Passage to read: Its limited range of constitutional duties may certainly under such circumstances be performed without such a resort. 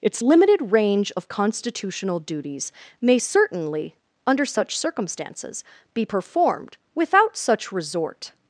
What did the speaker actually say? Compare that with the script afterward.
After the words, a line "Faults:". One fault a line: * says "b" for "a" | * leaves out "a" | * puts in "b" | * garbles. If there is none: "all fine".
Its limited range of constitutional duties may certainly under such circumstances be performed without such resort.
Faults:
* leaves out "a"